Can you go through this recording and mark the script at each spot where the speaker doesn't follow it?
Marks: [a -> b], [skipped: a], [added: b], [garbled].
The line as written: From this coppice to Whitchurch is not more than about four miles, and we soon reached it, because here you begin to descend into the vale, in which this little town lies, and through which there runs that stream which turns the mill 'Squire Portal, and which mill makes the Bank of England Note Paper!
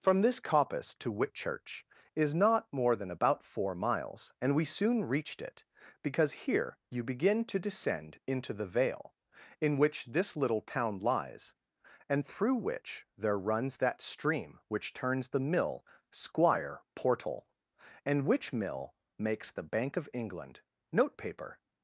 From this coppice to Whitchurch is not more than about four miles, and we soon reached it, because here you begin to descend into the vale, in which this little town lies, and through which there runs that stream which turns the mill 'Squire Portal, and which mill makes the Bank of England Note Paper!